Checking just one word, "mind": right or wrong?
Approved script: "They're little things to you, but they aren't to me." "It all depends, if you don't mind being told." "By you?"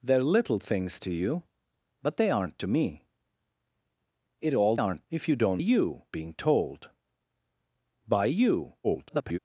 wrong